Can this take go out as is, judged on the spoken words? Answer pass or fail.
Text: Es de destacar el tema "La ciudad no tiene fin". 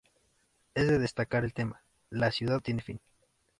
fail